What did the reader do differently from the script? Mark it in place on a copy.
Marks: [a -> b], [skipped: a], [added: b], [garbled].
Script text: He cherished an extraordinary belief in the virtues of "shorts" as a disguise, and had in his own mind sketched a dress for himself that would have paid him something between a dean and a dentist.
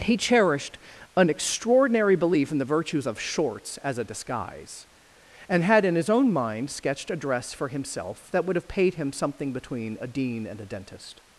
He cherished an extraordinary belief in the virtues of "shorts" as a disguise, and had in his own mind sketched a dress for himself that would have paid him something between a dean and a dentist.